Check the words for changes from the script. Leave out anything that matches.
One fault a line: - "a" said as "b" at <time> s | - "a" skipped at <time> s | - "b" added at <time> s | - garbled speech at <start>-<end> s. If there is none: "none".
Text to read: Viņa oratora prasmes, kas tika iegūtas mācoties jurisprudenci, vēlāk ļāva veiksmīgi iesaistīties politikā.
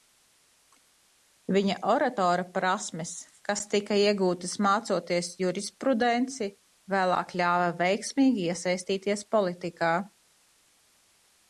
none